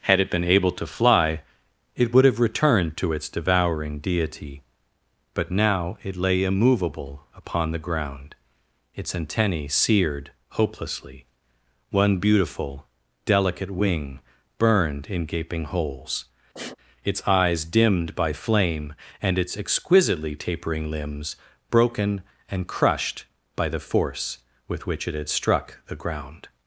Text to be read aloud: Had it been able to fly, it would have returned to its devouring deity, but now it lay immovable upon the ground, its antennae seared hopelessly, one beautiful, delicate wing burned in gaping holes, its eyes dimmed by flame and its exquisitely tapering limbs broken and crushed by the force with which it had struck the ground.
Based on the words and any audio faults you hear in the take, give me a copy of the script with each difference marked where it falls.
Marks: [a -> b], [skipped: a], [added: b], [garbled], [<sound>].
Had it been able to fly, it would have returned to its devouring deity, but now it lay immovable upon the ground, its antennae seared hopelessly, one beautiful, delicate wing burned in gaping holes, [sniff] its eyes dimmed by flame and its exquisitely tapering limbs broken and crushed by the force with which it had struck the ground.